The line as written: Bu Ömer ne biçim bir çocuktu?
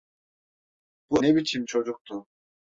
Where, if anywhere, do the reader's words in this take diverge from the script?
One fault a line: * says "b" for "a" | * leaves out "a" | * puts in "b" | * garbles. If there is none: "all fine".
* leaves out "Ömer"
* leaves out "bir"